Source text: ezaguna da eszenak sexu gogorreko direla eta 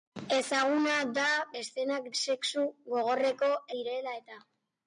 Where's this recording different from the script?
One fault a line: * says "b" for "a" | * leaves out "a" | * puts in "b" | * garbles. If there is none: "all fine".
all fine